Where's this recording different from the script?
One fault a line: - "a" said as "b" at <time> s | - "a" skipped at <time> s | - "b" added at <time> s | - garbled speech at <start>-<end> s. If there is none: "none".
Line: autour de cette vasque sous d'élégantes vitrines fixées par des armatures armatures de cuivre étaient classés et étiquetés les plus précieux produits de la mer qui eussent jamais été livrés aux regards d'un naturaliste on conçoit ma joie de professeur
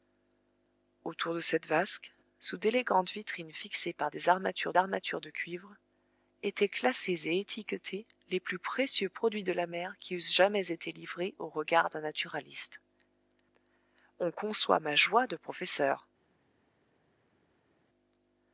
none